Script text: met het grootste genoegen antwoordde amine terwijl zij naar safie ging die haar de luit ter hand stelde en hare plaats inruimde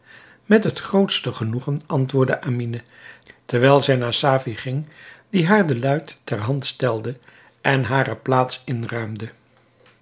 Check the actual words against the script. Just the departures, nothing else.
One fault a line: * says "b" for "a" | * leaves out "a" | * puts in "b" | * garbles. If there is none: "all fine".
all fine